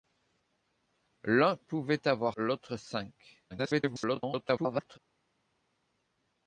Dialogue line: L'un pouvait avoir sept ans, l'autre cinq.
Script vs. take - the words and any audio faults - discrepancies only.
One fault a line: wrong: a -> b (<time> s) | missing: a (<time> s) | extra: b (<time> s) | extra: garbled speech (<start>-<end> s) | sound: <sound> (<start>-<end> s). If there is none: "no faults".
missing: sept ans (2.4 s)
extra: garbled speech (3.5-5.0 s)